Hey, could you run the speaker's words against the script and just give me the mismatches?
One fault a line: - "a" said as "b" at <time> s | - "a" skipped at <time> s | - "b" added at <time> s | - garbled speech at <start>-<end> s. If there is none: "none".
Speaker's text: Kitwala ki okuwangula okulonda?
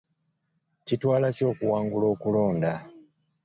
none